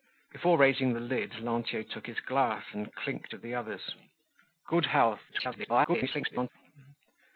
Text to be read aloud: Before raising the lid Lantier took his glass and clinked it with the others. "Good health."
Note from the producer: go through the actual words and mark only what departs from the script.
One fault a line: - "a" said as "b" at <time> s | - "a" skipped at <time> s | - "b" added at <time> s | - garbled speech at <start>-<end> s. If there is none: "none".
- "it" skipped at 3.4 s
- garbled speech at 5.3-6.5 s